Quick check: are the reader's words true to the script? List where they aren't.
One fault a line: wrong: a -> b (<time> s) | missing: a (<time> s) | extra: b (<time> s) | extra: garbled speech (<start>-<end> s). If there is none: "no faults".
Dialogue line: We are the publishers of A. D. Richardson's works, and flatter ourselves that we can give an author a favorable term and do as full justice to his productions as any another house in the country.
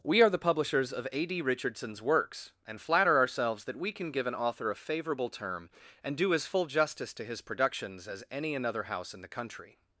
no faults